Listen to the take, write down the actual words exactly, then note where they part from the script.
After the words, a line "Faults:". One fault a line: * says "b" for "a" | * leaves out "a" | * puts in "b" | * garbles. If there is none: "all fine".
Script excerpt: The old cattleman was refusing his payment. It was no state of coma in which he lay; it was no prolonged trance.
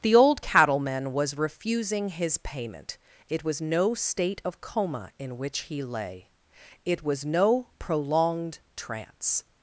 The old cattleman was refusing his payment. It was no state of coma in which he lay; it was no prolonged trance.
Faults:
all fine